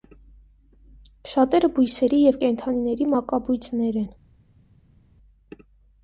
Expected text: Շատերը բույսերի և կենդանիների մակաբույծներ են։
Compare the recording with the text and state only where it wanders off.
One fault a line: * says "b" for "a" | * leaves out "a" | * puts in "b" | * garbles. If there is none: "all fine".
all fine